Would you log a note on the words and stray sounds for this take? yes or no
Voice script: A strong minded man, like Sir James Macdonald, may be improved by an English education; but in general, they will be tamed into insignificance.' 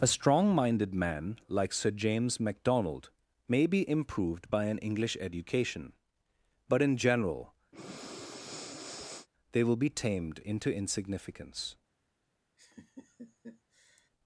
yes